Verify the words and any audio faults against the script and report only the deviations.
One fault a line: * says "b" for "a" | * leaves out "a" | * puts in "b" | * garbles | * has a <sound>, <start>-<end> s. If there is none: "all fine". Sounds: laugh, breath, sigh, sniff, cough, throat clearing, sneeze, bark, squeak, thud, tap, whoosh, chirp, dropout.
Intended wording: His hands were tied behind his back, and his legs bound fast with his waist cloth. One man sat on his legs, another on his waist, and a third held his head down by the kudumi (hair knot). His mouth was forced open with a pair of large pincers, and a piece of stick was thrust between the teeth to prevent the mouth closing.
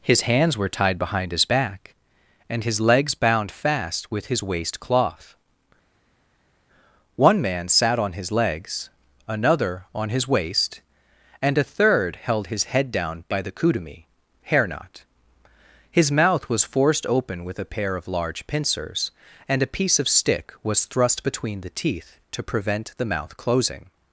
all fine